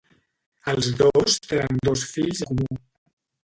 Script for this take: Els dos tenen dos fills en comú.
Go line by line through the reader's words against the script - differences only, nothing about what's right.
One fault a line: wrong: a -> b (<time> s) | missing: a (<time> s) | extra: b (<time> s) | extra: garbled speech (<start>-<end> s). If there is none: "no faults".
missing: en (2.5 s)